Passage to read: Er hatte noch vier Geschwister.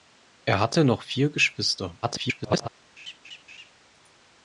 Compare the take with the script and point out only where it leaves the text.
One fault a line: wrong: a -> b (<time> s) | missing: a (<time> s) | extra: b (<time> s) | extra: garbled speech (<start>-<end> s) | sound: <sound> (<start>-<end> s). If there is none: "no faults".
extra: garbled speech (2.0-2.7 s)
sound: laugh (3.0-3.7 s)